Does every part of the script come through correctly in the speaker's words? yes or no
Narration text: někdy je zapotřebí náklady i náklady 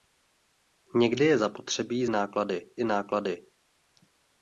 yes